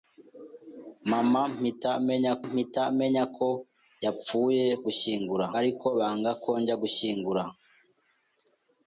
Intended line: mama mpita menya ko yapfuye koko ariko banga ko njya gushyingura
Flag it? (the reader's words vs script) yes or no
yes